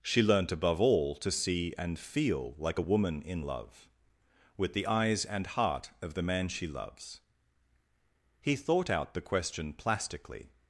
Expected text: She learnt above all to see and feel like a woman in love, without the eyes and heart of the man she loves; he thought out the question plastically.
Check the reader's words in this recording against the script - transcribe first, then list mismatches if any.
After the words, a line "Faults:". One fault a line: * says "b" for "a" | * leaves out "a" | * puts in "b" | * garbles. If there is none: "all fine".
She learnt above all to see and feel like a woman in love, with the eyes and heart of the man she loves; he thought out the question plastically.
Faults:
* says "with" for "without"